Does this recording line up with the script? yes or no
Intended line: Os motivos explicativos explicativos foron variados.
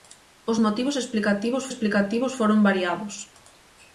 yes